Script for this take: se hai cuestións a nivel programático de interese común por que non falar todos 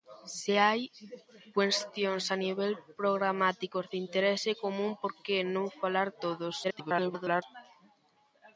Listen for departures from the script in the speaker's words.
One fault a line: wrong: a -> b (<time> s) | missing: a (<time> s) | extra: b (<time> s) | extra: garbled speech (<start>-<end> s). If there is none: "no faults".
extra: garbled speech (6.6-7.4 s)